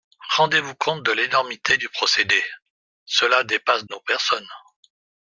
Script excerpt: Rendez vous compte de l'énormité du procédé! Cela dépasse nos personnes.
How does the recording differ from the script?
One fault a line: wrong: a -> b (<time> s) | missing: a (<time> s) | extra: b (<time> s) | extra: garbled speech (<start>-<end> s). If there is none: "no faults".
no faults